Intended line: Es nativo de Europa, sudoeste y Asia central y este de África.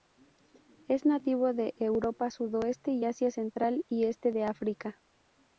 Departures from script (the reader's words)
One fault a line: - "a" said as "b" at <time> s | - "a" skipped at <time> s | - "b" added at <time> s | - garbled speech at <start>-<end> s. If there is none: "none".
none